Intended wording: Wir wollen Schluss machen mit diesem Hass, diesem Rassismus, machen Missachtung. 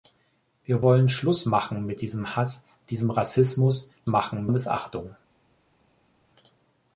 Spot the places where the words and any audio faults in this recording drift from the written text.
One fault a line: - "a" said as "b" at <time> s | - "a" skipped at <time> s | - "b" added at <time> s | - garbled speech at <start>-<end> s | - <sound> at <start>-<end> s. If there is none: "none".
none